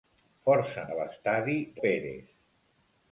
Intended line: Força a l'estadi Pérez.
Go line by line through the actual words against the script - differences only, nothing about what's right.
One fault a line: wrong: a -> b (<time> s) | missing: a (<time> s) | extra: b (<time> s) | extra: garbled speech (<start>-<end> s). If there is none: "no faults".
no faults